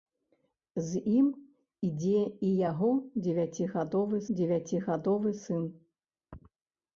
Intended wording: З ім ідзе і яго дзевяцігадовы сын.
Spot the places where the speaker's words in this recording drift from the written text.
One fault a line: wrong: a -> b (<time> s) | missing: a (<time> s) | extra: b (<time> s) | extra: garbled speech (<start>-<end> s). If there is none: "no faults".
extra: дзевяцігадовы (4.4 s)